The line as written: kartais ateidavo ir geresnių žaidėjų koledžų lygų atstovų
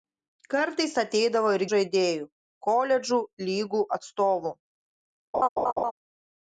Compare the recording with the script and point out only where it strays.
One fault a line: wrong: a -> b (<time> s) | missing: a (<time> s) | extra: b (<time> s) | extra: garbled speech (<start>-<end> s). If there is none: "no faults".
missing: geresnių (1.6 s)